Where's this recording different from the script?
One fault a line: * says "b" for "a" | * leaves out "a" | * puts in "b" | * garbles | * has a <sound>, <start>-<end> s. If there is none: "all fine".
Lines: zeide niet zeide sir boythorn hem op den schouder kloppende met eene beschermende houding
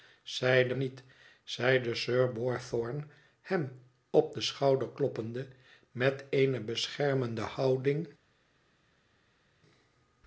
all fine